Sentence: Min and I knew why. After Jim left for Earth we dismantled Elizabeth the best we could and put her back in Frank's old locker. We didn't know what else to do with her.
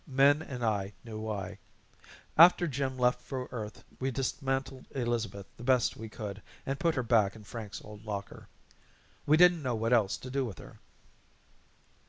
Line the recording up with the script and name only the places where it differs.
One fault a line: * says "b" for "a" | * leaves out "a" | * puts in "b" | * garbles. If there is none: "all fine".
all fine